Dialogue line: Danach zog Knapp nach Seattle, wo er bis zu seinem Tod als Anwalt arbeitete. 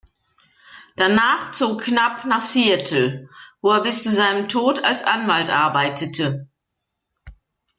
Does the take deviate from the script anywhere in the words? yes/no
no